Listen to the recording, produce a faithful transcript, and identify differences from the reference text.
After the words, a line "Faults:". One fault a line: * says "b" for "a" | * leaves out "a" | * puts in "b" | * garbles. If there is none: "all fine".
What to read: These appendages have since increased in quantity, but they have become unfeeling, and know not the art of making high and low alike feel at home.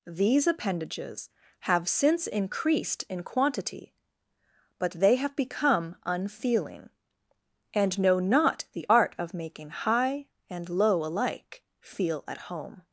These appendages have since increased in quantity, but they have become unfeeling, and know not the art of making high and low alike feel at home.
Faults:
all fine